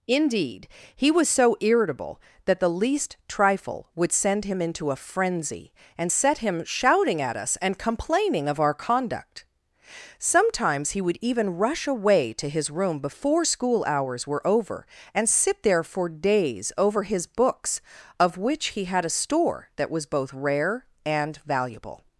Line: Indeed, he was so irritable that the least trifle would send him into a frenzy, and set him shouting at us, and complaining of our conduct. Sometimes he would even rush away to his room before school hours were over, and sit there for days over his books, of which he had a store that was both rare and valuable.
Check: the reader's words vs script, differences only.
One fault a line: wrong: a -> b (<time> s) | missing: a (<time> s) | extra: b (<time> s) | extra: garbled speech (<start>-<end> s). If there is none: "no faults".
no faults